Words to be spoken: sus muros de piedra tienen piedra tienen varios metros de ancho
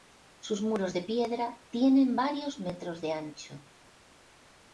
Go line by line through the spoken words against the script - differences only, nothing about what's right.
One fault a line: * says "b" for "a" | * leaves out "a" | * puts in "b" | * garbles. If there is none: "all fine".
* leaves out "piedra tienen"